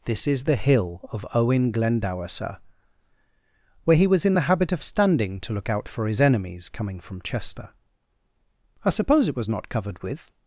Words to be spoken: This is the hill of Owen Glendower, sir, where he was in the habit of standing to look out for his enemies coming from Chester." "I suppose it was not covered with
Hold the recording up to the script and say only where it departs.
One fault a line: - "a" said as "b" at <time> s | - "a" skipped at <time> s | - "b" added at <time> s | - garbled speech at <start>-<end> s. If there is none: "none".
none